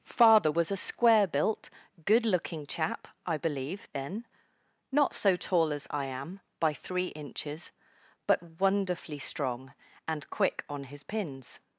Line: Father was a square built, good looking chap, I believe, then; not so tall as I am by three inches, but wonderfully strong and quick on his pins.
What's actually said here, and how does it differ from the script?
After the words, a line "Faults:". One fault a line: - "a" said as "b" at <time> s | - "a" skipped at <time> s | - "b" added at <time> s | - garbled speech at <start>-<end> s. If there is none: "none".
Father was a square built, good looking chap, I believe, then; not so tall as I am by three inches, but wonderfully strong and quick on his pins.
Faults:
none